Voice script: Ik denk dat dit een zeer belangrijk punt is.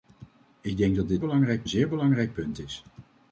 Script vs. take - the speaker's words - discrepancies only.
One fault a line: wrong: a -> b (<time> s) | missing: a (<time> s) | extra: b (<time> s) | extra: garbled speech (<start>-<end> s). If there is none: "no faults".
wrong: een -> belangrijk (1.2 s)